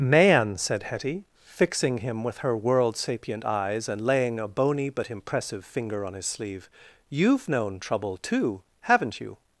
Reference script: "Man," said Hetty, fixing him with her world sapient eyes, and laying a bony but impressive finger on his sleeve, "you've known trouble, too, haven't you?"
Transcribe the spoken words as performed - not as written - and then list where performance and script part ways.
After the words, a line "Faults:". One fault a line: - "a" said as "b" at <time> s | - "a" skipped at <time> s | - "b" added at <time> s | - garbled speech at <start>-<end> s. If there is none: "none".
"Man," said Hetty, fixing him with her world sapient eyes, and laying a bony but impressive finger on his sleeve, "you've known trouble, too, haven't you?"
Faults:
none